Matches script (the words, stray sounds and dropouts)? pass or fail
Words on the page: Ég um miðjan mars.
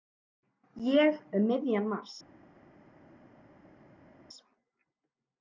pass